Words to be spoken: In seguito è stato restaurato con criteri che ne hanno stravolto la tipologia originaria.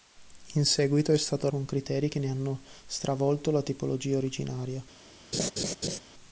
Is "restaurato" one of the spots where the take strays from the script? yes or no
yes